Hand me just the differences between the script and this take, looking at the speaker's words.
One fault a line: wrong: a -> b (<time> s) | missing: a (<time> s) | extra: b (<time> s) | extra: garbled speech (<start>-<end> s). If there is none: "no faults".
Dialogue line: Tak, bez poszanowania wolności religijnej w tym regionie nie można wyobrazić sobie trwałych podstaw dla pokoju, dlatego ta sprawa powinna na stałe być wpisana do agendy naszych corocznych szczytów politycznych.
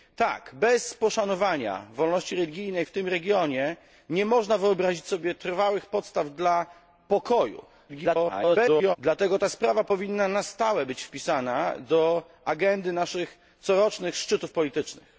extra: garbled speech (7.9-9.0 s)